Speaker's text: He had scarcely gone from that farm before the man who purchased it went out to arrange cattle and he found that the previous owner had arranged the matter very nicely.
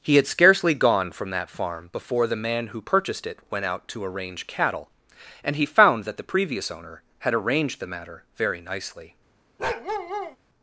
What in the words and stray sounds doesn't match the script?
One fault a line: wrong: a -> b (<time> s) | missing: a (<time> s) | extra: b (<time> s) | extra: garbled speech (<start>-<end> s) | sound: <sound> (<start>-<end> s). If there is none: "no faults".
sound: bark (9.6-10.4 s)